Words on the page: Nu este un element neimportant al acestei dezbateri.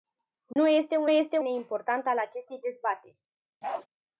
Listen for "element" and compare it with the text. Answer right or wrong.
wrong